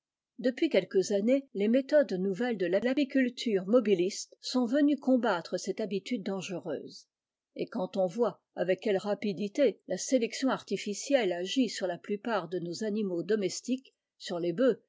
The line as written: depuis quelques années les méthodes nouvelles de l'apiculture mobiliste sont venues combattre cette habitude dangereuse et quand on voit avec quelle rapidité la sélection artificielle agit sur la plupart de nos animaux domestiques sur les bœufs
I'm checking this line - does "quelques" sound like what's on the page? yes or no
yes